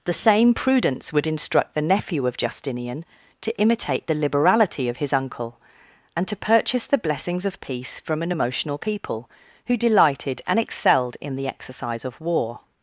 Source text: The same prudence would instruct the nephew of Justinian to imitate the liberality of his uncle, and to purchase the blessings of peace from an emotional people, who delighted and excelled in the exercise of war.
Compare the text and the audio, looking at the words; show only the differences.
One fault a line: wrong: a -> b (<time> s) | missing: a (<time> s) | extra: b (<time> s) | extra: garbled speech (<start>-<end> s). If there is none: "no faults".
no faults